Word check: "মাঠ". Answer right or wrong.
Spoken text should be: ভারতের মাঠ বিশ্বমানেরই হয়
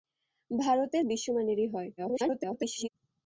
wrong